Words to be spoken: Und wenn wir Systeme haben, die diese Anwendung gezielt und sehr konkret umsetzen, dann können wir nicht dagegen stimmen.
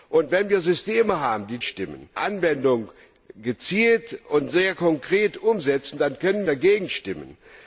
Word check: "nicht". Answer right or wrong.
wrong